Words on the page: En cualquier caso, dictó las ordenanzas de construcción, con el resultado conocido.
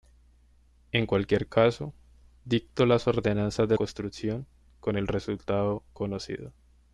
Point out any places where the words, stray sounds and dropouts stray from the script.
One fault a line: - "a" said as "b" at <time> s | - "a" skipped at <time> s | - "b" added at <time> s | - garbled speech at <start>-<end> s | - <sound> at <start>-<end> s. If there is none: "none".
none